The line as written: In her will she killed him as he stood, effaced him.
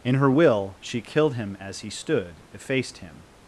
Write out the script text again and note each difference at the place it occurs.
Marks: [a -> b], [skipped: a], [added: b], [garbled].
In her will she killed him as he stood, effaced him.